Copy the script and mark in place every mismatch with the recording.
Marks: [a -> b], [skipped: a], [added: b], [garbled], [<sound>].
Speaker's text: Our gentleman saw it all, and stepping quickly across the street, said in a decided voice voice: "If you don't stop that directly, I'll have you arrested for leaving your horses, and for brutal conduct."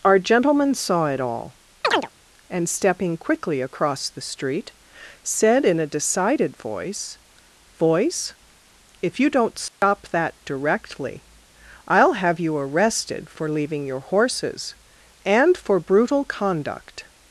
Our gentleman saw it all, [chirp] and stepping quickly across the street, said in a decided voice voice: "If you don't stop [dropout] that directly, I'll have you arrested for leaving your horses, and for brutal conduct."